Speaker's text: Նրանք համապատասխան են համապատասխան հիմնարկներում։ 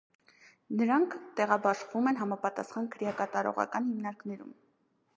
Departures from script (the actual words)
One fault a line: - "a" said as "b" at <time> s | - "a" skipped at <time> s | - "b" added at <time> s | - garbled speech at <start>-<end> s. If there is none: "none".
- "համապատասխան" said as "տեղաբաշխվում" at 1.4 s
- "քրեակատարողական" added at 3.0 s